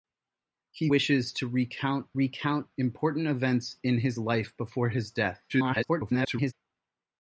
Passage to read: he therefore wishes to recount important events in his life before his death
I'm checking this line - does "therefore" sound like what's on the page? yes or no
no